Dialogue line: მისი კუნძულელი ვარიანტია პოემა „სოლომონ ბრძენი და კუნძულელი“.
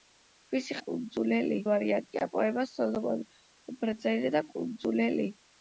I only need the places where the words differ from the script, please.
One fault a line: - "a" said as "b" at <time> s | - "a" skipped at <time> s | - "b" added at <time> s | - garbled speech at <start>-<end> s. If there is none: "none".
none